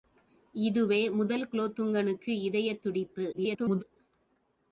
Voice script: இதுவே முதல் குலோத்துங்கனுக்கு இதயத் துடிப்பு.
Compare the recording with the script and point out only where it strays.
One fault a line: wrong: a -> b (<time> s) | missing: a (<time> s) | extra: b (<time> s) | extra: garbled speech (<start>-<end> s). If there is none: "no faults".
extra: garbled speech (3.3-3.8 s)